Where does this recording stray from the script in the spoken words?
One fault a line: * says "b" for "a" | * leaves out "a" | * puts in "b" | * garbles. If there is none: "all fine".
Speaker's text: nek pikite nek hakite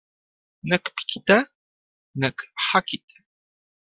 all fine